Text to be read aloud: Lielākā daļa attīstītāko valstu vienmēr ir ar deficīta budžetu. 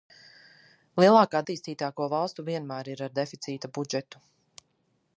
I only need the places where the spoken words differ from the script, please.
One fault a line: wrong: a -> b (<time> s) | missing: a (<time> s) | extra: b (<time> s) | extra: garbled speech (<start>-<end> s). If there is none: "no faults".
missing: daļa (1.4 s)